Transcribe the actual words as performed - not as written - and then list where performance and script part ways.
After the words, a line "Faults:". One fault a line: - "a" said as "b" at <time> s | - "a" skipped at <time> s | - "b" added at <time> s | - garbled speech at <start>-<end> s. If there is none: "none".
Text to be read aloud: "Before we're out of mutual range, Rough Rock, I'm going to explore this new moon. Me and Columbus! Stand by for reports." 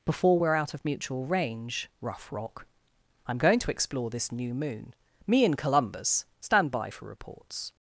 "Before we're out of mutual range, Rough Rock, I'm going to explore this new moon. Me and Columbus! Stand by for reports."
Faults:
none